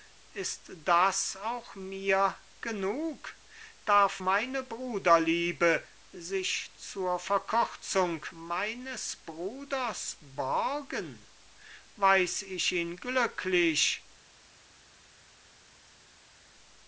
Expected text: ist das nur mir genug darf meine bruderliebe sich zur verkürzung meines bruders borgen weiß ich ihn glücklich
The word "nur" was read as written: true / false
false